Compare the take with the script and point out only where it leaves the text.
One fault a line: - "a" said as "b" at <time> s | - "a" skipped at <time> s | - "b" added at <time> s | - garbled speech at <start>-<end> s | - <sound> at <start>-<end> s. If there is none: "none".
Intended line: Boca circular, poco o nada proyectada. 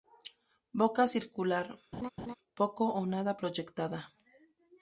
- laugh at 1.9-2.3 s